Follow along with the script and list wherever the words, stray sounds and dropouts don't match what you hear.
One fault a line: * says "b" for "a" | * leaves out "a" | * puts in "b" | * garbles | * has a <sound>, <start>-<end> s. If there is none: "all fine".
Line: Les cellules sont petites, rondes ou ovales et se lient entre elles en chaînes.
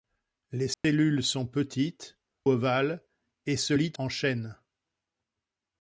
* has a dropout, 0.7-0.8 s
* leaves out "rondes ou"
* leaves out "entre elles"